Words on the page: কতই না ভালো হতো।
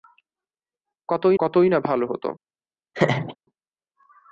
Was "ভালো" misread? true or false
false